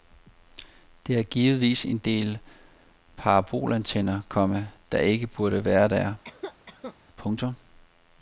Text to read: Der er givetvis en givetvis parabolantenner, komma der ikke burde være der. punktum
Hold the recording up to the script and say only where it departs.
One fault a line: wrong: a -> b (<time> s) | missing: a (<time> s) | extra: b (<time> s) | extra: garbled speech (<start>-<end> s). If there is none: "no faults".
wrong: givetvis -> del (2.0 s)